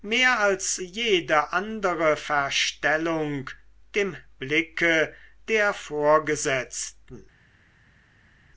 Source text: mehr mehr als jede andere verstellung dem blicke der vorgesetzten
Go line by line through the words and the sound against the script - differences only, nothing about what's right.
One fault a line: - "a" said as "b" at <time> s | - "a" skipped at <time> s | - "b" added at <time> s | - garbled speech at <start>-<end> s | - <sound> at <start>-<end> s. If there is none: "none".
- "mehr" skipped at 0.4 s